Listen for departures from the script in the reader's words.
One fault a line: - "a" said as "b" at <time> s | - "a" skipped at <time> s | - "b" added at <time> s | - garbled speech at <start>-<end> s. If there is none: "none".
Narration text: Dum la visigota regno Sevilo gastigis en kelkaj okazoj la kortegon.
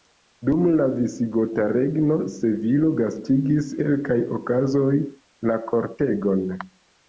- "en" skipped at 3.7 s